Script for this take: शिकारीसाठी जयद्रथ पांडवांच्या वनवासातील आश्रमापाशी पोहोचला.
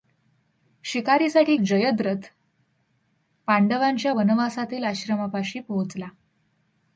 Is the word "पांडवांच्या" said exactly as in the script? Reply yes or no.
yes